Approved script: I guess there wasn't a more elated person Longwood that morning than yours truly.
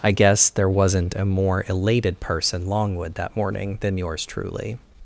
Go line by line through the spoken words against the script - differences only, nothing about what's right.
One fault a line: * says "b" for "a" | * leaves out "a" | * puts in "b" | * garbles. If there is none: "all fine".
all fine